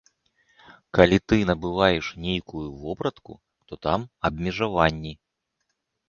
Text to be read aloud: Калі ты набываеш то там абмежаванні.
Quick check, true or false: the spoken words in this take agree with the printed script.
false